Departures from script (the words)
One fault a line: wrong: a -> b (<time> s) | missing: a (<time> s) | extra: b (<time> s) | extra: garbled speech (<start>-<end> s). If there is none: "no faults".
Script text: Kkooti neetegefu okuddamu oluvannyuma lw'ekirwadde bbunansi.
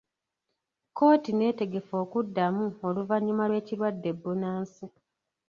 no faults